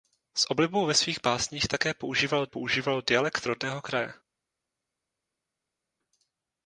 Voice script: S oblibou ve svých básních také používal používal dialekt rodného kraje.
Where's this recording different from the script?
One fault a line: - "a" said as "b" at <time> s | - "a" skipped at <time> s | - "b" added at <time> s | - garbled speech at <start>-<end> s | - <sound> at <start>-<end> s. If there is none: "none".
none